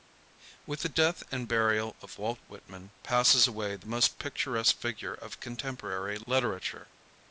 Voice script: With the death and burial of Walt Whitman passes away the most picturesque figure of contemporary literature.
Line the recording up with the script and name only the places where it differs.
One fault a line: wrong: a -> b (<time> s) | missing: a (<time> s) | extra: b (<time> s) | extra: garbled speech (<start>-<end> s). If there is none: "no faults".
no faults